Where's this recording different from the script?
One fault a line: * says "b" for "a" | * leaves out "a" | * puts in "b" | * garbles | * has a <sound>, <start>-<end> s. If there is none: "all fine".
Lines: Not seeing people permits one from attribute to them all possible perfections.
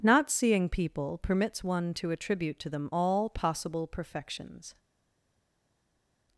* says "to" for "from"